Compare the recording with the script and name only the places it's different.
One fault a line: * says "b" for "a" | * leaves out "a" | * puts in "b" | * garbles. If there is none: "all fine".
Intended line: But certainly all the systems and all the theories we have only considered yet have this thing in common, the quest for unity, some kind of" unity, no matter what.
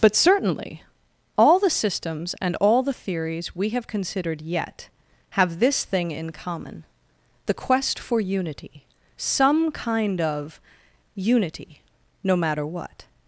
* leaves out "only"